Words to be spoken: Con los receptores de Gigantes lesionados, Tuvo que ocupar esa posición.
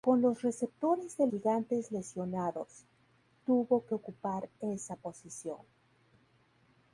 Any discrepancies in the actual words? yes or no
no